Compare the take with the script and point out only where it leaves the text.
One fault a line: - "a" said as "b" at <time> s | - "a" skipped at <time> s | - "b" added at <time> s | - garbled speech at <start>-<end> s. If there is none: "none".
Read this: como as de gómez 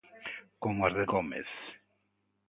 none